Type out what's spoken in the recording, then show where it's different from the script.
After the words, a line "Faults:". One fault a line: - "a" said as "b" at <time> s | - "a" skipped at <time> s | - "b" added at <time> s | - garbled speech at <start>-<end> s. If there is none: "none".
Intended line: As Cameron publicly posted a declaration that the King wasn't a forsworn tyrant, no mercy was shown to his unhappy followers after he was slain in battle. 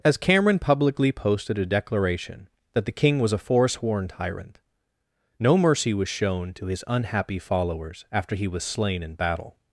As Cameron publicly posted a declaration that the King was a forsworn tyrant, no mercy was shown to his unhappy followers after he was slain in battle.
Faults:
- "wasn't" said as "was" at 3.2 s